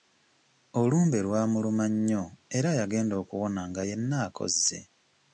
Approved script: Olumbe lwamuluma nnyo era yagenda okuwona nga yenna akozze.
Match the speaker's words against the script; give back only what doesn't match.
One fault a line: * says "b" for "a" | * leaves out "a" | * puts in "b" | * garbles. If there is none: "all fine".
all fine